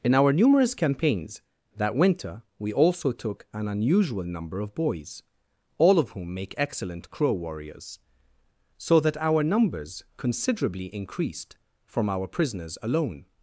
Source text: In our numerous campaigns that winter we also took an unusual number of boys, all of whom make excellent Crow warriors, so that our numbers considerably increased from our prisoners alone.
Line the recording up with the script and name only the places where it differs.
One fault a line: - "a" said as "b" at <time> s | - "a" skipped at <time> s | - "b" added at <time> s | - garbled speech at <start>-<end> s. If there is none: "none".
none